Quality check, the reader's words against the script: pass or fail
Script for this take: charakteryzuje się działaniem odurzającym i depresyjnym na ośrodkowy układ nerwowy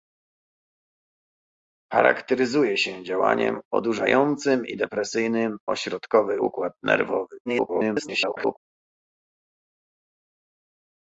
fail